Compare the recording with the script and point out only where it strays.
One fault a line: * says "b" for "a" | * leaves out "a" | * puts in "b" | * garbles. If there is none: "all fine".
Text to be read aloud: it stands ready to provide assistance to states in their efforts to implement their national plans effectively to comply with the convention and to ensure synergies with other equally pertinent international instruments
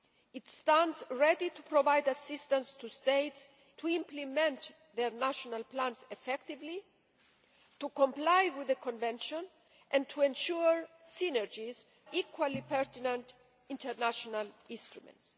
* leaves out "in their efforts"
* leaves out "with other"